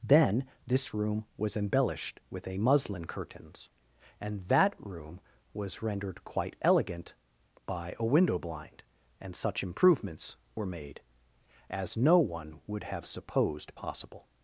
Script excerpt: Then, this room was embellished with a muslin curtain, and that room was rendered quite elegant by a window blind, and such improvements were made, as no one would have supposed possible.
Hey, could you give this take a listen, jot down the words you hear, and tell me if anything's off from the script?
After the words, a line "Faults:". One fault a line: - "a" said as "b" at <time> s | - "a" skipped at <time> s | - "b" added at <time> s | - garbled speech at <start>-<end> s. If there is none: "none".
Then, this room was embellished with a muslin curtains, and that room was rendered quite elegant by a window blind, and such improvements were made, as no one would have supposed possible.
Faults:
- "curtain" said as "curtains" at 3.0 s